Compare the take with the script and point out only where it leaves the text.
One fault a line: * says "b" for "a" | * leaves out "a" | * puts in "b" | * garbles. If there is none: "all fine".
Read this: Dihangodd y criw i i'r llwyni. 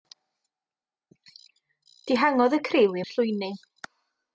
all fine